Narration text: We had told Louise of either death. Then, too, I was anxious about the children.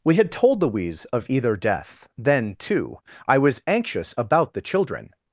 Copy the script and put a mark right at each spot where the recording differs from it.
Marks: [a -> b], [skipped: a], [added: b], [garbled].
We had told Louise of either death. Then, too, I was anxious about the children.